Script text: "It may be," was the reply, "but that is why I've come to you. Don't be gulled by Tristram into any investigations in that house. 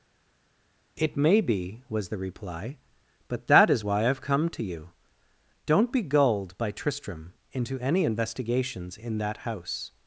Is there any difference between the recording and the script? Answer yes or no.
no